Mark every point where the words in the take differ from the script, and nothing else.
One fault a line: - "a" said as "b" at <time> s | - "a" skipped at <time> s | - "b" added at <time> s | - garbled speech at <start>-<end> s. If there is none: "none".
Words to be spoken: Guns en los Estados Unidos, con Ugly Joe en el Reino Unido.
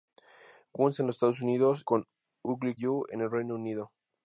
none